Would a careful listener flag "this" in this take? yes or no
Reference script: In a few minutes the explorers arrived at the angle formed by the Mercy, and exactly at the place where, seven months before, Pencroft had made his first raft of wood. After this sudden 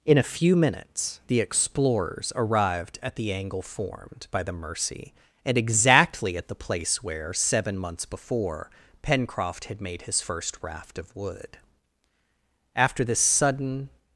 no